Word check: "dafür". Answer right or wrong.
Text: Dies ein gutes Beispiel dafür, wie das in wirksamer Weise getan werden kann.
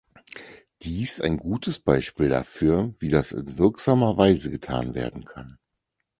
right